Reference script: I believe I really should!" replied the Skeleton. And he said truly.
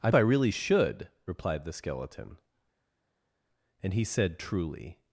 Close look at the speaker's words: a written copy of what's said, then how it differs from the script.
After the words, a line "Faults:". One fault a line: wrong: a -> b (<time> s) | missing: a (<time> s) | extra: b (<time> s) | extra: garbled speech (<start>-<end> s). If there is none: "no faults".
I I really should!" replied the Skeleton. And he said truly.
Faults:
missing: believe (0.1 s)